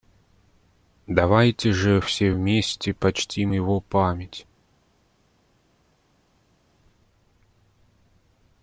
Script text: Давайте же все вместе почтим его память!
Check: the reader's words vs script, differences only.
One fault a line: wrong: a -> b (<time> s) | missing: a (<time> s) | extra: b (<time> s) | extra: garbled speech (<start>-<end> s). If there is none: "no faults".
no faults